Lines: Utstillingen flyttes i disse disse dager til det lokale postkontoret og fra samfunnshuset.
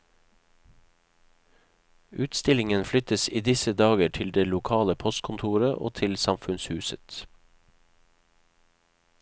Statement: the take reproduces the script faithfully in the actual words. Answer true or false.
false